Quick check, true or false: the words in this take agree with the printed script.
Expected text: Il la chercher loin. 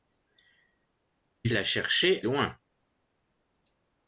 true